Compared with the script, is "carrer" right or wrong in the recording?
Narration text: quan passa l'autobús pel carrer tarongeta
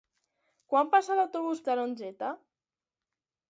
wrong